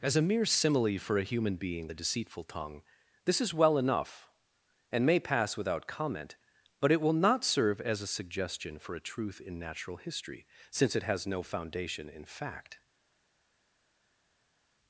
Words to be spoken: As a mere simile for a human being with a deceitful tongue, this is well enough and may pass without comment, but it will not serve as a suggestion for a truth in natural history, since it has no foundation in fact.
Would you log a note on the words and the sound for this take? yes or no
yes